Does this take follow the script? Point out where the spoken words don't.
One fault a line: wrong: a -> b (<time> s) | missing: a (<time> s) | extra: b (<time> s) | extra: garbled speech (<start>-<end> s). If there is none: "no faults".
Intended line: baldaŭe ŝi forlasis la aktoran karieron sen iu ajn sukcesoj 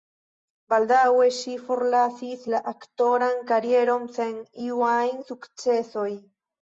no faults